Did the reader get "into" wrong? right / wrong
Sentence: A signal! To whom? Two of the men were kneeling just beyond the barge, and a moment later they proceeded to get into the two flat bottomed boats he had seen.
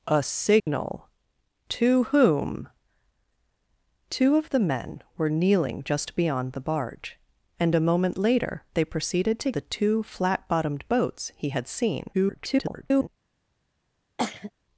wrong